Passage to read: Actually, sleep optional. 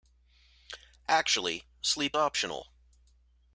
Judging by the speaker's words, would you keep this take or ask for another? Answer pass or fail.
pass